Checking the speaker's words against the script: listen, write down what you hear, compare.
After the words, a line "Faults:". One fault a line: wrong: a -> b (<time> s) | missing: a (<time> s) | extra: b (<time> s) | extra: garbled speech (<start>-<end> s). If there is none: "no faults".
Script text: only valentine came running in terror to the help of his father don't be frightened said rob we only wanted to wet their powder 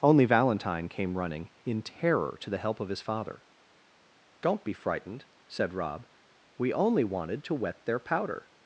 only valentine came running in terror to the help of his father don't be frightened said rob we only wanted to wet their powder
Faults:
no faults